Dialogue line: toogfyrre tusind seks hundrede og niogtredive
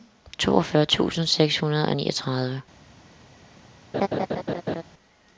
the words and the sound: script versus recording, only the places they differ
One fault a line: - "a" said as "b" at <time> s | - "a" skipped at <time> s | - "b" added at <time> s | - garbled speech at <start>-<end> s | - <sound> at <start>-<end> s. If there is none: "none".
- laugh at 3.9-4.8 s